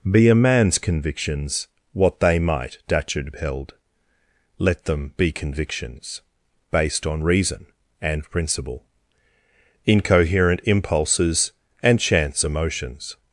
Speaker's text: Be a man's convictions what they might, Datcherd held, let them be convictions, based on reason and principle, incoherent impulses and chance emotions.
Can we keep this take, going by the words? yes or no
yes